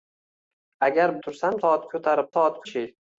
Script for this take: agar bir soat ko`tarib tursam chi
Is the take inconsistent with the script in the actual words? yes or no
yes